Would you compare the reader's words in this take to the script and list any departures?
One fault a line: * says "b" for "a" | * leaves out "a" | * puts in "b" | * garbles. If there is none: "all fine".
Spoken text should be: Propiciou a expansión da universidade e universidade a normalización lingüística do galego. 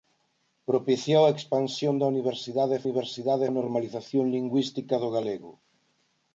all fine